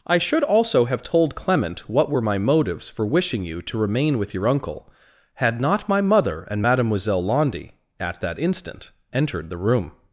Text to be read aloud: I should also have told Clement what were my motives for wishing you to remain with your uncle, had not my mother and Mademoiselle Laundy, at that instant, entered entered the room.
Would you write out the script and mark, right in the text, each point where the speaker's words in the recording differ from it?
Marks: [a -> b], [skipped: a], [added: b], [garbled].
I should also have told Clement what were my motives for wishing you to remain with your uncle, had not my mother and Mademoiselle Laundy, at that instant, entered [skipped: entered] the room.